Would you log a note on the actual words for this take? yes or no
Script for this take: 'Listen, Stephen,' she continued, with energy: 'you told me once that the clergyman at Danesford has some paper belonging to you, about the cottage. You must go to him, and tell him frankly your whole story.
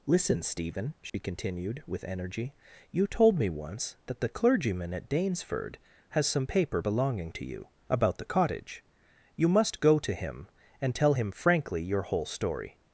no